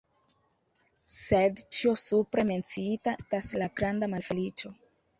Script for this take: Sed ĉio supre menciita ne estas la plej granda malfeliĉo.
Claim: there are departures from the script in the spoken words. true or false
true